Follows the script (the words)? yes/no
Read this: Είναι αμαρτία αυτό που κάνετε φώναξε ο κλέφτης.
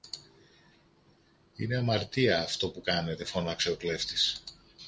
yes